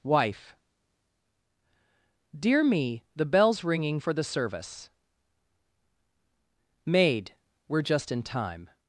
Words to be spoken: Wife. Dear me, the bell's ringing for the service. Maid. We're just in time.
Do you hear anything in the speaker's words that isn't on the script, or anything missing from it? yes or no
no